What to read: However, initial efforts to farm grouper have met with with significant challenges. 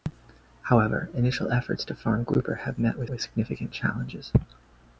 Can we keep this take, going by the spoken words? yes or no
yes